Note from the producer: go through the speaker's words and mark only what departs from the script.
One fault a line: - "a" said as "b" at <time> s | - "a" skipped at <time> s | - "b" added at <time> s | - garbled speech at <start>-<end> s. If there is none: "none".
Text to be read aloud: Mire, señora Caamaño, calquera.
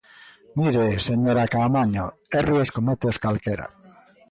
- "erros cométeos" added at 2.4 s